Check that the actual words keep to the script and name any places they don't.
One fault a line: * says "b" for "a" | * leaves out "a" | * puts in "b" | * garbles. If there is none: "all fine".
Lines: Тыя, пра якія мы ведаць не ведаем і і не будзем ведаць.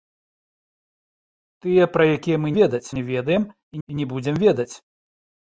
all fine